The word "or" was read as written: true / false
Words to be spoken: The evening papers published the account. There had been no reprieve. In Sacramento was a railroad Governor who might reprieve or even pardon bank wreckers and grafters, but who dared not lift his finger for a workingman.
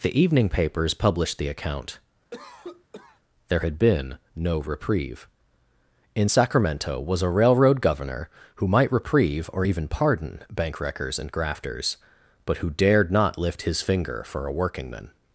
true